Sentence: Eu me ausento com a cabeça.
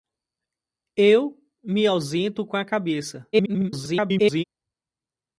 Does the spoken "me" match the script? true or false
true